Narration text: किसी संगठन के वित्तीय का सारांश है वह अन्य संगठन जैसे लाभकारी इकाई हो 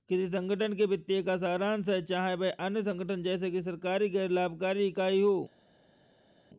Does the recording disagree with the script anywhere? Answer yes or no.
yes